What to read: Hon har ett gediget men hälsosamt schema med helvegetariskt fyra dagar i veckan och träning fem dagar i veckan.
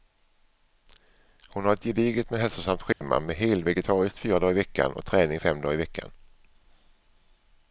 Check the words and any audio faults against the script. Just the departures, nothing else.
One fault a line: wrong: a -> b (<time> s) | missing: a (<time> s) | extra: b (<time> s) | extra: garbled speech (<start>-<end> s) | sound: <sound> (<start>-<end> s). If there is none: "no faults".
sound: dropout (2.9-3.0 s)